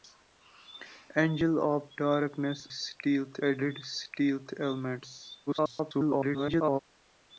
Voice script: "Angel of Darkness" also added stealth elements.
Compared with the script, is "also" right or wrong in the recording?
wrong